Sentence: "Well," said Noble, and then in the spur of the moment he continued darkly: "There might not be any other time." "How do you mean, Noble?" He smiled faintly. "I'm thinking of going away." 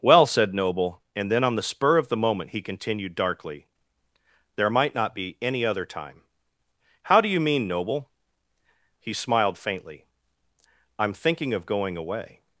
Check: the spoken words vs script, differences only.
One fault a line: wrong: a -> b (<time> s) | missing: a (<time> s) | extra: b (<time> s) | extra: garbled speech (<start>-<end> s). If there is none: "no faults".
wrong: in -> on (1.4 s)